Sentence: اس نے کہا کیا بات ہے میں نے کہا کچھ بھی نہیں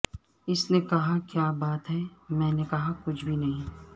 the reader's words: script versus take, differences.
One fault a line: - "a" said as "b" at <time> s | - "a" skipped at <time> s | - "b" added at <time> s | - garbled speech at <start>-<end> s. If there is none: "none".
none